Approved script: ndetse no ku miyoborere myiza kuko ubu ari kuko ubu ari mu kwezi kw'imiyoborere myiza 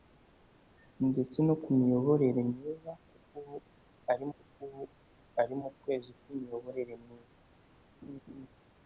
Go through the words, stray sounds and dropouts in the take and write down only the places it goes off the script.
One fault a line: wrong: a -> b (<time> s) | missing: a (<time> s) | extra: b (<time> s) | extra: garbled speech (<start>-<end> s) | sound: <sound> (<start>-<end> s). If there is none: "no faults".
sound: laugh (8.0-8.5 s)